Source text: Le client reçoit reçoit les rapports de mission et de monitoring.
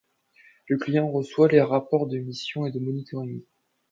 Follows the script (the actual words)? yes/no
no